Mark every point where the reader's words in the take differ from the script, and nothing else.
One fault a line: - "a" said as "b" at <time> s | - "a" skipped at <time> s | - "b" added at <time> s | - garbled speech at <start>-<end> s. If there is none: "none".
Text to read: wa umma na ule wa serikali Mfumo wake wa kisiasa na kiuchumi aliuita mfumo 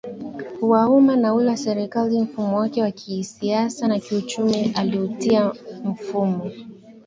none